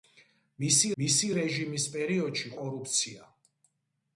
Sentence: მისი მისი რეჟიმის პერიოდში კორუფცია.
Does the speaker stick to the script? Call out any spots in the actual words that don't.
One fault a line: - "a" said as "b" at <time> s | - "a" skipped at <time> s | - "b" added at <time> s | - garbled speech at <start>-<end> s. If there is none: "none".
none